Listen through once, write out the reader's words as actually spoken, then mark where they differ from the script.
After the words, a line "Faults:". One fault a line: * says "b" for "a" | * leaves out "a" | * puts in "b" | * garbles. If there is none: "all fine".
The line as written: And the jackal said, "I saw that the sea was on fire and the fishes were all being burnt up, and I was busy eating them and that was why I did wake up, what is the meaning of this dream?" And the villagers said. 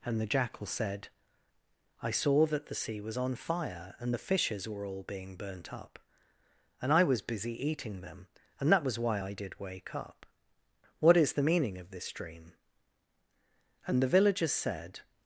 And the jackal said, "I saw that the sea was on fire and the fishes were all being burnt up, and I was busy eating them and that was why I did wake up, what is the meaning of this dream?" And the villagers said.
Faults:
all fine